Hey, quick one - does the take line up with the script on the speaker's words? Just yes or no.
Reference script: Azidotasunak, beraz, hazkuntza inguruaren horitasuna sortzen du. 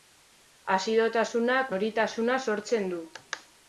no